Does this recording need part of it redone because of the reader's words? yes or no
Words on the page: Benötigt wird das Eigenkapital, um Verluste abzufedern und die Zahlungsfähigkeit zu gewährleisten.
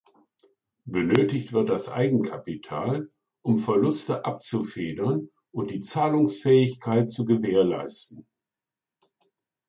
no